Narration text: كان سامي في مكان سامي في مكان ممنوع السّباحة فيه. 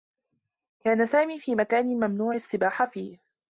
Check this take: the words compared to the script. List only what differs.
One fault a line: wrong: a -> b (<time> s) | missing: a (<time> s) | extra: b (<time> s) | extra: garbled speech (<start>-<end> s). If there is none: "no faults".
missing: سامي في مكان (1.9 s)